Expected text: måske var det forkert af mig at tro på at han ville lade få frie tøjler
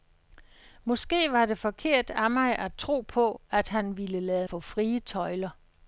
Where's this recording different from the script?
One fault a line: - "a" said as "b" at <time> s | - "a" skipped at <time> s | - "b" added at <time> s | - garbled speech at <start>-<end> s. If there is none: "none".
none